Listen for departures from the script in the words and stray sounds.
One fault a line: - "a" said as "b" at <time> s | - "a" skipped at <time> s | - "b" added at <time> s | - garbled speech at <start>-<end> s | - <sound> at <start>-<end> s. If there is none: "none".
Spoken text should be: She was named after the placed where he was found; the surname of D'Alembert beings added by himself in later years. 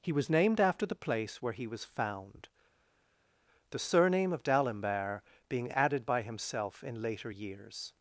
- "She" said as "He" at 0.0 s
- "placed" said as "place" at 0.9 s
- "beings" said as "being" at 5.5 s